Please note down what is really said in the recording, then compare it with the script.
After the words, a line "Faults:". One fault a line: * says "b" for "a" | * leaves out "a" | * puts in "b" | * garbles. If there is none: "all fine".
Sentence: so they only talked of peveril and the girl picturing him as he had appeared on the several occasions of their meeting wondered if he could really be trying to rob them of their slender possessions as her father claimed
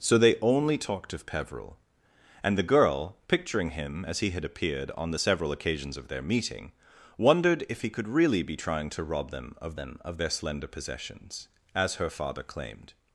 so they only talked of peveril and the girl picturing him as he had appeared on the several occasions of their meeting wondered if he could really be trying to rob them of them of their slender possessions as her father claimed
Faults:
* puts in "them of"